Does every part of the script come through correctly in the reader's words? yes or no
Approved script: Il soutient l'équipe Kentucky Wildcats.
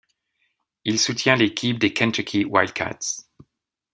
no